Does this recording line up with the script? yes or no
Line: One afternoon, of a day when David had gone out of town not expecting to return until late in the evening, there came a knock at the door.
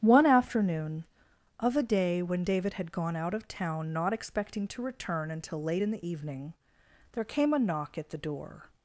yes